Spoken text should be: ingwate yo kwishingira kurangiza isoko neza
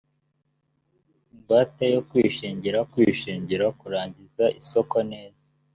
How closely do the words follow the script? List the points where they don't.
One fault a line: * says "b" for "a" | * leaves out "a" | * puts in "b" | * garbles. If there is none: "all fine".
* puts in "kwishingira"